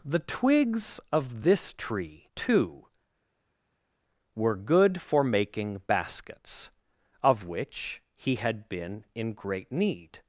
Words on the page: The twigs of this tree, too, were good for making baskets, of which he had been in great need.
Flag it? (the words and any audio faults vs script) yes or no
no